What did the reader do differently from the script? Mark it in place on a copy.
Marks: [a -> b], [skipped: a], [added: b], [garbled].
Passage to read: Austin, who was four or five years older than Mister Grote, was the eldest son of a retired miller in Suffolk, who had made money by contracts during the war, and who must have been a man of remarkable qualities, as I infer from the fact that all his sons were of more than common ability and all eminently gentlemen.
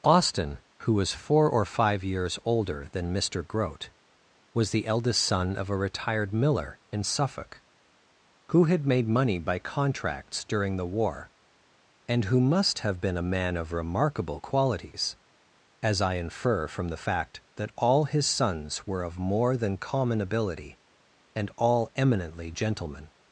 Austin, who was four or five years older than Mister Grote, was the eldest son of a retired miller in Suffolk, who had made money by contracts during the war, and who must have been a man of remarkable qualities, as I infer from the fact that all his sons were of more than common ability and all eminently gentlemen.